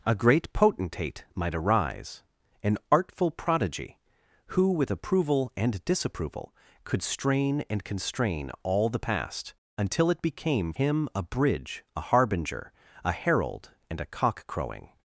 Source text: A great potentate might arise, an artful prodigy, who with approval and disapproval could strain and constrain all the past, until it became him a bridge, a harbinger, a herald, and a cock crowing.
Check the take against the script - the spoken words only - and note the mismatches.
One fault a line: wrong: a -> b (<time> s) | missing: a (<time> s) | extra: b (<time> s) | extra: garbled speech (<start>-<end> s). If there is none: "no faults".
no faults